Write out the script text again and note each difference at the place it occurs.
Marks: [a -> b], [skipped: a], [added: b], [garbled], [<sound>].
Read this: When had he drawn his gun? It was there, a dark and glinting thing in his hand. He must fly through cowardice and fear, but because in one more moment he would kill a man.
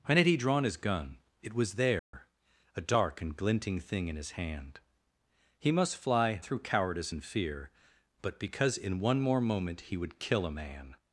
When had he drawn his gun? It was there, [dropout] a dark and glinting thing in his hand. He must fly through cowardice and fear, but because in one more moment he would kill a man.